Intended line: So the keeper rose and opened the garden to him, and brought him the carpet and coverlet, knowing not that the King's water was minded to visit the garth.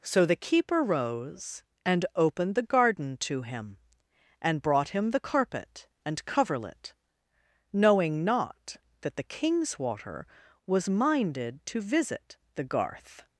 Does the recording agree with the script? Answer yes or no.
yes